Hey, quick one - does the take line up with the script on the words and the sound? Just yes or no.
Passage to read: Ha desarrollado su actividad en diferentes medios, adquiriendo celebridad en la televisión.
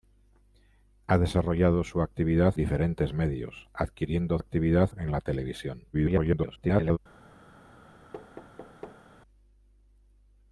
no